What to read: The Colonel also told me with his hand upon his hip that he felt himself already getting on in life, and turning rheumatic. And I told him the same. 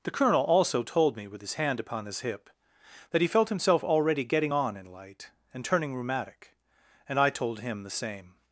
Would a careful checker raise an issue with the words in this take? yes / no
yes